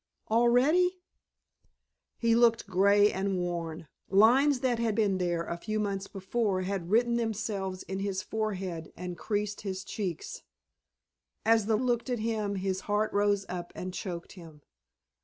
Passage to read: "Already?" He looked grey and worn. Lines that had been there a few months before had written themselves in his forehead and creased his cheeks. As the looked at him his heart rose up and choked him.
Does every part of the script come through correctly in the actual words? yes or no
yes